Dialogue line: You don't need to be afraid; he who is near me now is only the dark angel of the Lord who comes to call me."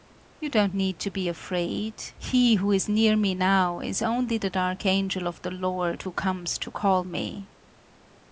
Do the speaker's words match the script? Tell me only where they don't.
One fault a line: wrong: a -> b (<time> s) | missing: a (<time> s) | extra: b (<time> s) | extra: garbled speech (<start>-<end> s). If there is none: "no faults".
no faults